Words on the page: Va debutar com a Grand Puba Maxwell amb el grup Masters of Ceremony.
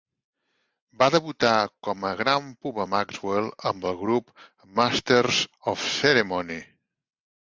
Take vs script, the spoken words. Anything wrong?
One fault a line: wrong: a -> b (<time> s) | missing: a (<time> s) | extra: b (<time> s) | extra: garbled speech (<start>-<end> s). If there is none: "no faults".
no faults